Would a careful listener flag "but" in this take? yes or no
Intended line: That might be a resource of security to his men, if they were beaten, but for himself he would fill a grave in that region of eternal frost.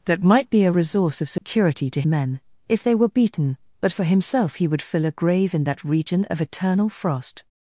no